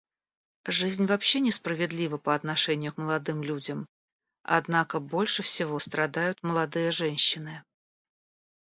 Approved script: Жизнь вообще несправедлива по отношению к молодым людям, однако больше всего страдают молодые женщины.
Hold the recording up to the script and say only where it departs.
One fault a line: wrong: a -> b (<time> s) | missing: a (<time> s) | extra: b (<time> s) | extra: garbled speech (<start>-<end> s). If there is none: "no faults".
no faults